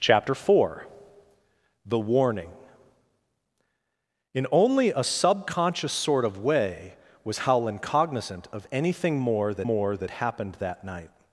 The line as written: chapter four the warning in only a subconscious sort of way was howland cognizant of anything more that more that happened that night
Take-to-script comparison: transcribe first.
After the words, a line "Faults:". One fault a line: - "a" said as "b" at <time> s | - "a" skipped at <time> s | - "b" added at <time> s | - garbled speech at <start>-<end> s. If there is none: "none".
chapter four the warning in only a subconscious sort of way was howland cognizant of anything more that more that happened that night
Faults:
none